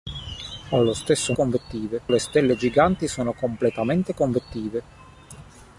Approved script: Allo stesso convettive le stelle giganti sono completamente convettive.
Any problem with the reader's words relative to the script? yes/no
no